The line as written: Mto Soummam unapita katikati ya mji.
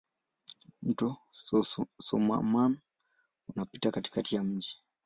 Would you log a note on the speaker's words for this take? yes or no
no